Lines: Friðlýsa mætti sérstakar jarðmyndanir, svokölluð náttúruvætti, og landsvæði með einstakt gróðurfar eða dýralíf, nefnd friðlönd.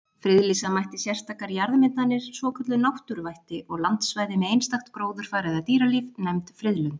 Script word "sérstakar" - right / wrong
right